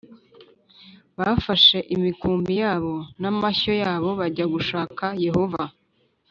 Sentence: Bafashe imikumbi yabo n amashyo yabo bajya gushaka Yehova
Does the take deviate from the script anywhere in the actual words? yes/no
no